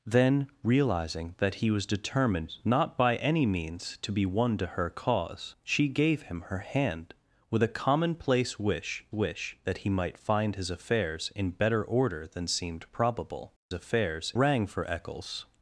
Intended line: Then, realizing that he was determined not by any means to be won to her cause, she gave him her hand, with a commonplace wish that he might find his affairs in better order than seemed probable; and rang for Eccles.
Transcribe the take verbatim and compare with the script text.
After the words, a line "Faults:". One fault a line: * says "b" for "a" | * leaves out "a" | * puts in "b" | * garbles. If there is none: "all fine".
Then, realizing that he was determined not by any means to be won to her cause, she gave him her hand, with a commonplace wish wish that he might find his affairs in better order than seemed probable; affairs rang for Eccles.
Faults:
* puts in "wish"
* says "affairs" for "and"